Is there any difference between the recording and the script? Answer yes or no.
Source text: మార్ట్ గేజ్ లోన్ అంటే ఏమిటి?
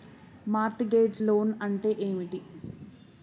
no